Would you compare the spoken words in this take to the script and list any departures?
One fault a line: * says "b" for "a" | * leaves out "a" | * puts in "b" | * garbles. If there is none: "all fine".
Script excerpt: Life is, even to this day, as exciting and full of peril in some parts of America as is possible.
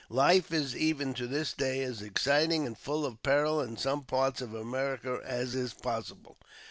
all fine